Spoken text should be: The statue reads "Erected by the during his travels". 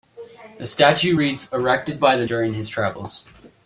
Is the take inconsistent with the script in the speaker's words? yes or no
no